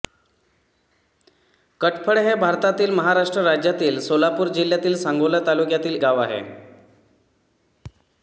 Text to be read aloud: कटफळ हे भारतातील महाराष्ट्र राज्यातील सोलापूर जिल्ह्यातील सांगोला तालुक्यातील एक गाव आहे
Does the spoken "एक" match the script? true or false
false